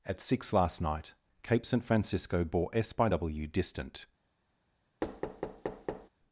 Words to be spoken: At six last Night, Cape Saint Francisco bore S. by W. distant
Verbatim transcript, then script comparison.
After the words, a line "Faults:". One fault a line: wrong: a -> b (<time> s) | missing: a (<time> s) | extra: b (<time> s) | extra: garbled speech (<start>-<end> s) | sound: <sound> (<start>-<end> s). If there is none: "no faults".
At six last Night, Cape Saint Francisco bore S. by W. distant
Faults:
sound: thud (5.0-6.1 s)